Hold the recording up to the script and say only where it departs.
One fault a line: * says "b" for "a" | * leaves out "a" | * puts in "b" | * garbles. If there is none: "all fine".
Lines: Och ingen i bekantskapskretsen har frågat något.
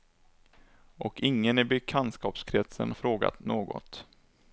* leaves out "har"